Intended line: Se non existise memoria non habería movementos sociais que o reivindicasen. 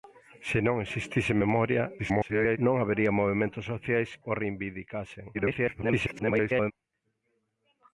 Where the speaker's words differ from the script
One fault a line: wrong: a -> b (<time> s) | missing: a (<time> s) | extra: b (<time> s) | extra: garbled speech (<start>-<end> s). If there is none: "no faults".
extra: garbled speech (2.0-2.6 s)
missing: que (4.1 s)
extra: garbled speech (5.3-6.7 s)